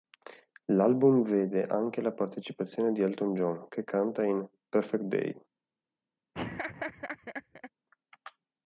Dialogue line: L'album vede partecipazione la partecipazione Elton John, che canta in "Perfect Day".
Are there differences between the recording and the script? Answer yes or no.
yes